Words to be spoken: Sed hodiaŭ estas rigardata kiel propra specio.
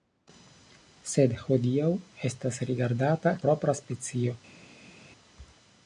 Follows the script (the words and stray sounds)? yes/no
no